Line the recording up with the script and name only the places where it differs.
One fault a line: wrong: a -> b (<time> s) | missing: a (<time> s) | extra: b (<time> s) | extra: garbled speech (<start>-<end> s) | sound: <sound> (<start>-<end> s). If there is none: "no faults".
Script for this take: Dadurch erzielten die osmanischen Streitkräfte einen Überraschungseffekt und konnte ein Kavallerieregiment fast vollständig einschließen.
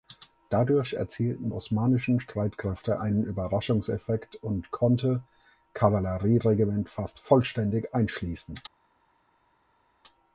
missing: die (1.5 s)
missing: ein (5.2 s)